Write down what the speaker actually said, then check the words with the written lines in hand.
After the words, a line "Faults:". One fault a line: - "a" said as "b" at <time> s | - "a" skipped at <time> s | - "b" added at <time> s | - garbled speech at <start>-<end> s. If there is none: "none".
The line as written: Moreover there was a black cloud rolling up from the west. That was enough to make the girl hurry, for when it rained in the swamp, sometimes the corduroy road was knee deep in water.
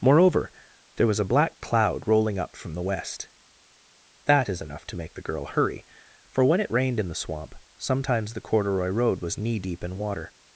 Moreover there was a black cloud rolling up from the west. That is enough to make the girl hurry, for when it rained in the swamp, sometimes the corduroy road was knee deep in water.
Faults:
- "was" said as "is" at 4.5 s